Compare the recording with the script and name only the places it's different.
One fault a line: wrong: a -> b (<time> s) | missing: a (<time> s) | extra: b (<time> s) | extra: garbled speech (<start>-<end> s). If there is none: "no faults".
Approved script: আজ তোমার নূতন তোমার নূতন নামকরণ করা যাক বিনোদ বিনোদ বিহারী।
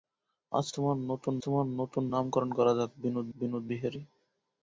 no faults